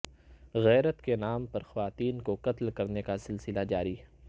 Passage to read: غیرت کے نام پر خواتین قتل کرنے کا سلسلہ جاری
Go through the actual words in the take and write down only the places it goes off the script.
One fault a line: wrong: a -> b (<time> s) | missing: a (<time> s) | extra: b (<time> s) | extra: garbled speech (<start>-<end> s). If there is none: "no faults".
extra: کو (2.2 s)